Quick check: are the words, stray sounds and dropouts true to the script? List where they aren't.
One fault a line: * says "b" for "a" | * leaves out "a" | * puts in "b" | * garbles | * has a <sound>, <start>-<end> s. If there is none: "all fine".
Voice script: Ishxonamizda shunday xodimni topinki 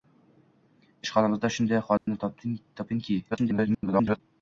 * has a dropout, 2.0-2.1 s
* garbles